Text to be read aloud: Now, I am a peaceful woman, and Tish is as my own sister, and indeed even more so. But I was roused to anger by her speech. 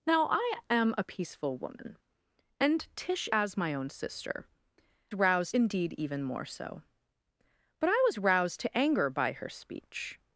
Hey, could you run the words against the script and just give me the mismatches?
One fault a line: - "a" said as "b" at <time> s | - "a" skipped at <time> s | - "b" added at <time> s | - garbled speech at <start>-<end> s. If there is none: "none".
- "is" skipped at 3.3 s
- "and" said as "roused" at 5.1 s